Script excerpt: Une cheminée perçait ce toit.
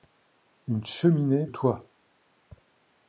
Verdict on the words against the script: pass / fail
fail